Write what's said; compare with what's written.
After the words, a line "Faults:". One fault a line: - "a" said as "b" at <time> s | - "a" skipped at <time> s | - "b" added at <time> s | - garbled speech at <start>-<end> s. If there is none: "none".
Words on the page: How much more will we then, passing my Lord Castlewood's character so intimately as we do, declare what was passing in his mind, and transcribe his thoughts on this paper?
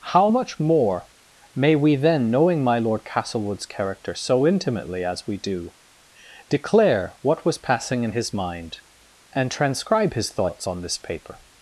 How much more may we then, knowing my Lord Castlewood's character so intimately as we do, declare what was passing in his mind, and transcribe his thoughts on this paper?
Faults:
- "will" said as "may" at 1.5 s
- "passing" said as "knowing" at 2.3 s